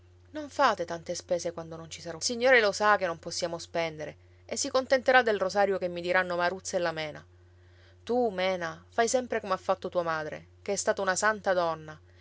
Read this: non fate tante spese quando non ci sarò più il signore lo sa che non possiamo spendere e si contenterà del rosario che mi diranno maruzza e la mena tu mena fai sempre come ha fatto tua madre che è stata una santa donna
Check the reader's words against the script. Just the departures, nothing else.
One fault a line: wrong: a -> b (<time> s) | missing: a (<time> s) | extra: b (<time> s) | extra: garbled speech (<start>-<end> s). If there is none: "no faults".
missing: più il (2.2 s)